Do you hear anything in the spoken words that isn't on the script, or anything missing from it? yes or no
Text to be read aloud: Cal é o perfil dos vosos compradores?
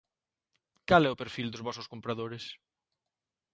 no